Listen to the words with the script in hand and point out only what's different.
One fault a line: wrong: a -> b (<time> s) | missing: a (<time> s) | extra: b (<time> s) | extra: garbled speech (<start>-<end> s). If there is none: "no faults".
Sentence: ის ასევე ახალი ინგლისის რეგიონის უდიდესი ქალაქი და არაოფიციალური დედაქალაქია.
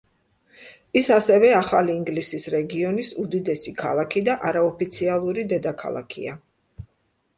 no faults